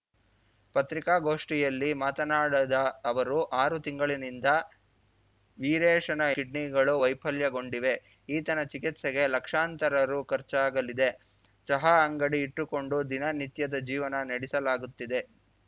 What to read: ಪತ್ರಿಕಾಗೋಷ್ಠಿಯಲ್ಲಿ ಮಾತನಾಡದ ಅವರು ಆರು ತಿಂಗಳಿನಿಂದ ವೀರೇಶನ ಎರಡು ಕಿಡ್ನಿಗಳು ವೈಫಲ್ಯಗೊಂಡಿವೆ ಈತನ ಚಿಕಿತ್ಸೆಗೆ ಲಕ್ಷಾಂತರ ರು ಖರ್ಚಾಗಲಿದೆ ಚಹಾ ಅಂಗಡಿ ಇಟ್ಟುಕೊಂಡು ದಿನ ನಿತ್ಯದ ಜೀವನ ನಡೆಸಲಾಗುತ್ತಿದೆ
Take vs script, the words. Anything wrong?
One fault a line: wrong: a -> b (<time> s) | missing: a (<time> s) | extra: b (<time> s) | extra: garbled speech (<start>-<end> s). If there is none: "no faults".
missing: ಎರಡು (6.2 s)